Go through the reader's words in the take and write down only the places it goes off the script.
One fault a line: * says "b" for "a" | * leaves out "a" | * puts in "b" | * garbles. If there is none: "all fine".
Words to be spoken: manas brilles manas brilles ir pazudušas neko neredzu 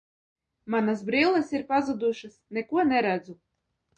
* leaves out "manas brilles"